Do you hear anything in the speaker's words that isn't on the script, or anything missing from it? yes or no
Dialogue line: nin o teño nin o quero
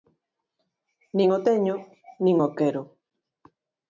no